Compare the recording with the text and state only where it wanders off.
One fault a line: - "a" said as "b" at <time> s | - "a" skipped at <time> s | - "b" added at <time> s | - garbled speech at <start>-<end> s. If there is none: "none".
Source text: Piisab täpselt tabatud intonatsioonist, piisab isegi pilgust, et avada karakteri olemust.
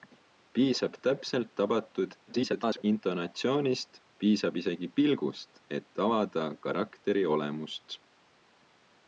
- garbled speech at 2.3-2.8 s